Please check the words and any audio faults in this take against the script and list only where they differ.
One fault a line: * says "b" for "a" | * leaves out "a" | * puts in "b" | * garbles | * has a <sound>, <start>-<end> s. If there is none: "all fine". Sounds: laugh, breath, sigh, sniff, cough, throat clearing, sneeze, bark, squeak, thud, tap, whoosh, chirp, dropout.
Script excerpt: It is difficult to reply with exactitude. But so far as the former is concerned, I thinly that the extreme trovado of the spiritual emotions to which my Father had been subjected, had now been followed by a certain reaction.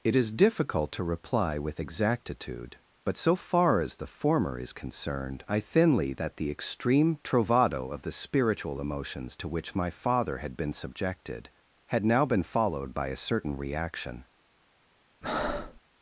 * has a breath, 15.2-15.8 s